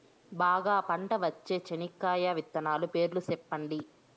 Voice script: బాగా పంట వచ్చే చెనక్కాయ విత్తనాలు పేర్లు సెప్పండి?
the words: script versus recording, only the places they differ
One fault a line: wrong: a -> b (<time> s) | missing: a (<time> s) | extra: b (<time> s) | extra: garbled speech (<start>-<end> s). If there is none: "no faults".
no faults